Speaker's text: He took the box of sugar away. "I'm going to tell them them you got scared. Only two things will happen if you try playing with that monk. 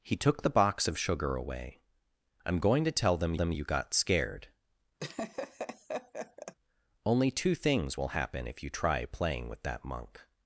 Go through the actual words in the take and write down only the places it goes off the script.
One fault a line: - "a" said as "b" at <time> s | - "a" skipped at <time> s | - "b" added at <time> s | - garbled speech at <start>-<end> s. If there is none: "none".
none